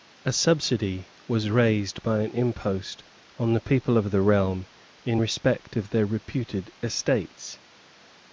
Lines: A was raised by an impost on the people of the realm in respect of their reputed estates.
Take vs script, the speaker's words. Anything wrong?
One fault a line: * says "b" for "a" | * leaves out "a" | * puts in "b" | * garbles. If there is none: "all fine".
* puts in "subsidy"